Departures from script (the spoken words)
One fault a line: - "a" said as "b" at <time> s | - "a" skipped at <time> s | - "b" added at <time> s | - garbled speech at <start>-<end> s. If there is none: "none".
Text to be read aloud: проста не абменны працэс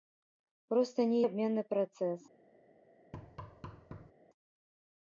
none